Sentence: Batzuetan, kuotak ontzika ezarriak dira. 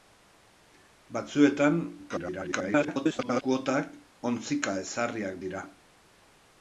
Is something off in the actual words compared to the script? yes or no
yes